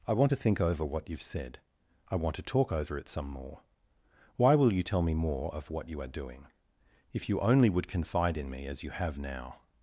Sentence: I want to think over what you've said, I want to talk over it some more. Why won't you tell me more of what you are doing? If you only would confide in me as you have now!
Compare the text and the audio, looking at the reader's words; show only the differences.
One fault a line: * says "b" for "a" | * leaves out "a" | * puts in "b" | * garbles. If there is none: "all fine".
* says "will" for "won't"